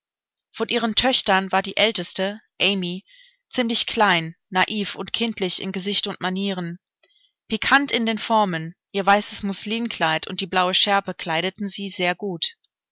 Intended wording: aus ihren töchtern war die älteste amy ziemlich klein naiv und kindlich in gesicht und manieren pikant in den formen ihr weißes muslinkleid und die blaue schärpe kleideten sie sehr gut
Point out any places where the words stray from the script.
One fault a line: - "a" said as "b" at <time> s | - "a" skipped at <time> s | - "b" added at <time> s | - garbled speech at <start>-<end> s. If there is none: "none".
- "aus" said as "von" at 0.5 s